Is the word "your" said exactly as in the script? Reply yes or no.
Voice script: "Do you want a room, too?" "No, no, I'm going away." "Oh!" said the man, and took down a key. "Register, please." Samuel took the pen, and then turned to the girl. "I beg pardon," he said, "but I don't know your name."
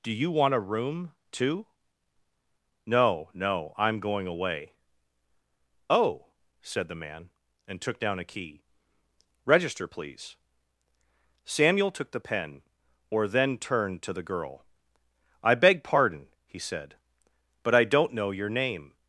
yes